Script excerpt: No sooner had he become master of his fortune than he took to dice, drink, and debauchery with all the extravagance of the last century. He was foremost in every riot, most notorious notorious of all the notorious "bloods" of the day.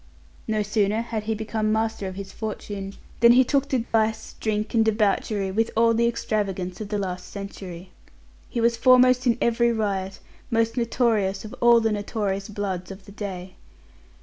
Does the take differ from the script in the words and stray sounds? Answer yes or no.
yes